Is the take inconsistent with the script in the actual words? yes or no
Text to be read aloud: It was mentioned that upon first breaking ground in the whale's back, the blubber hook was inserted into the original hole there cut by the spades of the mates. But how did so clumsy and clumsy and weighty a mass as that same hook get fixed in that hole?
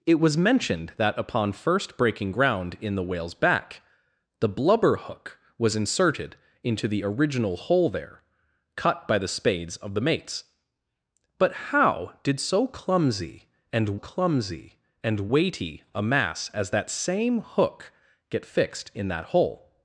no